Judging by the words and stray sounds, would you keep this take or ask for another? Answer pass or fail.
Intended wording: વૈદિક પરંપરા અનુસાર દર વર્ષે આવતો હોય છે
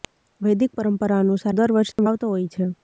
fail